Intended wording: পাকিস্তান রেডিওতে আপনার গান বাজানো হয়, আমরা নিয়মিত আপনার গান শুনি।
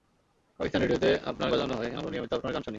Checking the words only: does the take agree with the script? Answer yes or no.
no